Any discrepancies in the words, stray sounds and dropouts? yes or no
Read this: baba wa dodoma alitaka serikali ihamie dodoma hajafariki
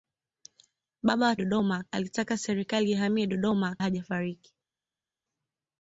no